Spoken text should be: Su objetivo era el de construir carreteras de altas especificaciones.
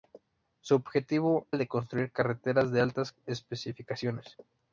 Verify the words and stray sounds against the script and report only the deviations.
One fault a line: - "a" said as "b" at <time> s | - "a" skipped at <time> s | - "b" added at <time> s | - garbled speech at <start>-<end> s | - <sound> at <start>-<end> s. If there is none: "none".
- "era" skipped at 1.4 s